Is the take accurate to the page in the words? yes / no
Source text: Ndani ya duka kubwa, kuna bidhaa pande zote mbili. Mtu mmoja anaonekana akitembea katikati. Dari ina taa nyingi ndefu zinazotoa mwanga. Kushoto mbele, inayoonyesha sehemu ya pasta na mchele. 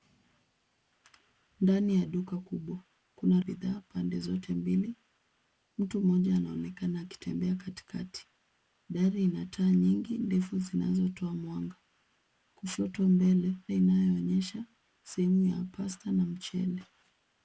yes